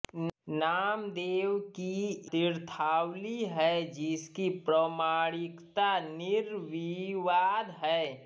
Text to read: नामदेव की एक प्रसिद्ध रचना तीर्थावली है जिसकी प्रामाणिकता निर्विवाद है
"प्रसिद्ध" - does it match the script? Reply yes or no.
no